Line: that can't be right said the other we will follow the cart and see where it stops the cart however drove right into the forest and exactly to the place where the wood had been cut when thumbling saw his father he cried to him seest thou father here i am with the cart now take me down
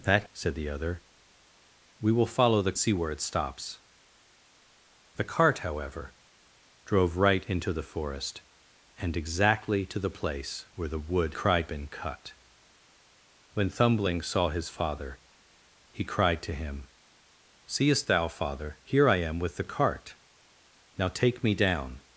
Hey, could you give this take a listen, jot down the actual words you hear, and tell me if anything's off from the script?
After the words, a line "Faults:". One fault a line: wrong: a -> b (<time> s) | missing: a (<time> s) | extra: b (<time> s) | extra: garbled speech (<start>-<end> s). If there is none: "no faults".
that said the other we will follow the see where it stops the cart however drove right into the forest and exactly to the place where the wood cried been cut when thumbling saw his father he cried to him seest thou father here i am with the cart now take me down
Faults:
missing: can't be right (0.2 s)
missing: cart and (2.8 s)
wrong: had -> cried (11.3 s)